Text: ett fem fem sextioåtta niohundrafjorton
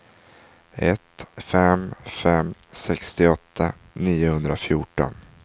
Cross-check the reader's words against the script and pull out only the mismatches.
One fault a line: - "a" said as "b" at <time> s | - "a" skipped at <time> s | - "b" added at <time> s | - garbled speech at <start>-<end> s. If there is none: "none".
none